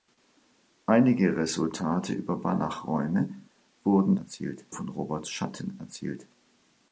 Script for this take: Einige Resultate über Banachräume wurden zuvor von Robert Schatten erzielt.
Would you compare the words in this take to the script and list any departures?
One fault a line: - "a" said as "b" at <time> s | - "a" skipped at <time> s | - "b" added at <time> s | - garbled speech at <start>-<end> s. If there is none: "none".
- "zuvor" said as "erzielt" at 4.2 s